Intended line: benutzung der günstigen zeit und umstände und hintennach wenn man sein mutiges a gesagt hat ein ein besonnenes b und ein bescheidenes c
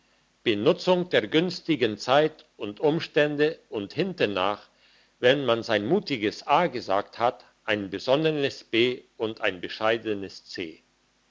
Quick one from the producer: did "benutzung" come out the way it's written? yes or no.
yes